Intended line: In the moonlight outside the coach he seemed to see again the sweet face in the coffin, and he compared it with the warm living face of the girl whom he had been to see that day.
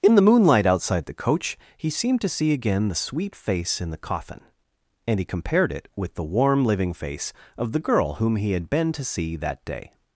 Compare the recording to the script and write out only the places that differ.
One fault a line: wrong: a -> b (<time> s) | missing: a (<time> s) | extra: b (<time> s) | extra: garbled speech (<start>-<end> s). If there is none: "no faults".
no faults